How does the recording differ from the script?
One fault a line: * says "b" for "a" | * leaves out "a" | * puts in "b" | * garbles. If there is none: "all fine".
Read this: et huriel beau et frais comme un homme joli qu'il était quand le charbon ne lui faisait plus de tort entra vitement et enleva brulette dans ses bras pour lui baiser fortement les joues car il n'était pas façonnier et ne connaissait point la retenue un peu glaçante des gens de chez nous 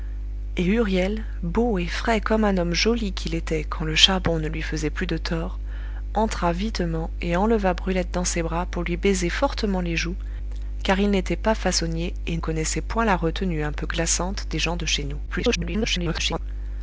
* leaves out "ne"
* garbles